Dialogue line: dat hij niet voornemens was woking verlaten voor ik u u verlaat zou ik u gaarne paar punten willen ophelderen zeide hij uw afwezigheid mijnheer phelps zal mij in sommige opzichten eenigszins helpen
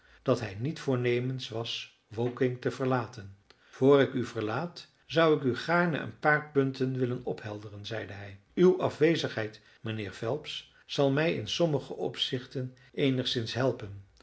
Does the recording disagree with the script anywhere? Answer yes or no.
yes